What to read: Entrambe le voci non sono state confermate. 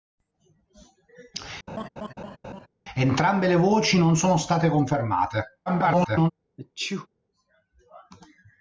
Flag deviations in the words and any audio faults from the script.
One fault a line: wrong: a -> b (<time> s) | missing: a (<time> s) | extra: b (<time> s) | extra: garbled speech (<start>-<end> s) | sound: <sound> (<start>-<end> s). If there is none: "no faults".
sound: laugh (1.7-2.7 s)
extra: garbled speech (5.7-6.3 s)
sound: sneeze (6.6-7.1 s)